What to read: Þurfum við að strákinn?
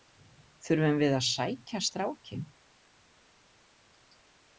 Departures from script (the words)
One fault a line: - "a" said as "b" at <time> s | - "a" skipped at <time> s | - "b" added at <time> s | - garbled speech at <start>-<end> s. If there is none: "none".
- "sækja" added at 1.3 s